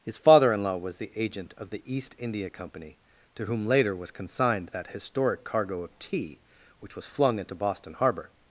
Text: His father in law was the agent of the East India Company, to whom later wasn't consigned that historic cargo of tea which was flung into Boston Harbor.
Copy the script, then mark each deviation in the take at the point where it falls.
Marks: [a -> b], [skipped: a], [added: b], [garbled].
His father in law was the agent of the East India Company, to whom later [wasn't -> was] consigned that historic cargo of tea which was flung into Boston Harbor.